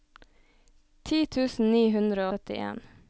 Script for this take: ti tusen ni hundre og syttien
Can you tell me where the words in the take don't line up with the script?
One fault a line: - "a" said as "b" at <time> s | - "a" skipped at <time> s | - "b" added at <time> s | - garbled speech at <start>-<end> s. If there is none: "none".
- "og" skipped at 2.3 s